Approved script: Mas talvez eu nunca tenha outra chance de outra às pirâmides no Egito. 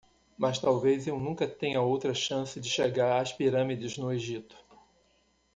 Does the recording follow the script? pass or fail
fail